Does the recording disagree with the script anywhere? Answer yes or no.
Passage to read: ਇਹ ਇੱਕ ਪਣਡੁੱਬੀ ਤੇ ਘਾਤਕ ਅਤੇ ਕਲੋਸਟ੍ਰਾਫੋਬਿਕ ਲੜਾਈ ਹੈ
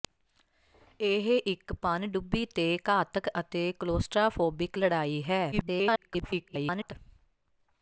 yes